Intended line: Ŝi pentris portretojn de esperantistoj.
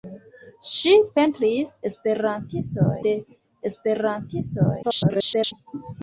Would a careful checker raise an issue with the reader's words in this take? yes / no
yes